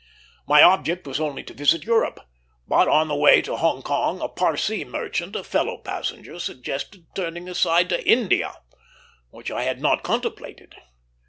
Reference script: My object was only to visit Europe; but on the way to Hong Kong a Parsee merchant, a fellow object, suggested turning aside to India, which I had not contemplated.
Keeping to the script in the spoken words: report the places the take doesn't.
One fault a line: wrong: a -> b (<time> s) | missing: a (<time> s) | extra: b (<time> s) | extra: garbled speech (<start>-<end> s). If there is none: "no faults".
wrong: object -> passenger (5.8 s)